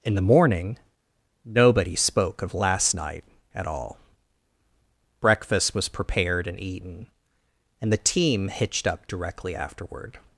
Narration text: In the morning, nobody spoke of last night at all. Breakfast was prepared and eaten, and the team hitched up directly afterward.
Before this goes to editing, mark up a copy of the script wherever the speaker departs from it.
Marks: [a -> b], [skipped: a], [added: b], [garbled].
In the morning, nobody spoke of last night at all. Breakfast was prepared and eaten, and the team hitched up directly afterward.